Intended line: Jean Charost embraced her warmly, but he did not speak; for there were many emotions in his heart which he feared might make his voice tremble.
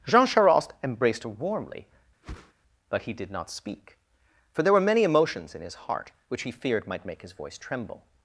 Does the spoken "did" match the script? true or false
true